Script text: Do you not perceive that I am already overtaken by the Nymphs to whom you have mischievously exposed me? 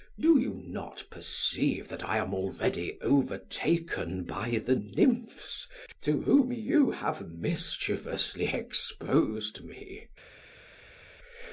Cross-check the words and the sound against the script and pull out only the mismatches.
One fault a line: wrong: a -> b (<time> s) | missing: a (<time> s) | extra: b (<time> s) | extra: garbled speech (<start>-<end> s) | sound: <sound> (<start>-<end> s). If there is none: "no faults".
no faults